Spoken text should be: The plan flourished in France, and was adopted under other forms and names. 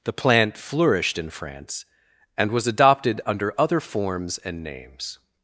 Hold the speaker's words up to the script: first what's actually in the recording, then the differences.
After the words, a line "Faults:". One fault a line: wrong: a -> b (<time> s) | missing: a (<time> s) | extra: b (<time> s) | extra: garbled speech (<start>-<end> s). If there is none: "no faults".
The plant flourished in France, and was adopted under other forms and names.
Faults:
wrong: plan -> plant (0.1 s)